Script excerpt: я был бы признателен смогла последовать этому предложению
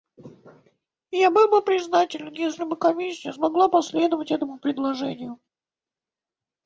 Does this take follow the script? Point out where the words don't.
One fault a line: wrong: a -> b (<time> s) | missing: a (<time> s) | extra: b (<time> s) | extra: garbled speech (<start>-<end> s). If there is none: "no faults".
extra: если бы комиссия (2.3 s)